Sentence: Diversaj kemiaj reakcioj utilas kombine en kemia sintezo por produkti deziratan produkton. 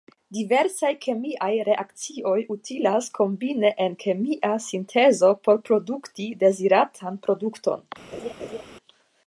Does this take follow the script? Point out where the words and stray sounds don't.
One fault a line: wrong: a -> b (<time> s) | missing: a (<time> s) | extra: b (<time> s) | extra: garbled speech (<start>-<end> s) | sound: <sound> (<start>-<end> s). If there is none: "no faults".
sound: laugh (8.1-8.6 s)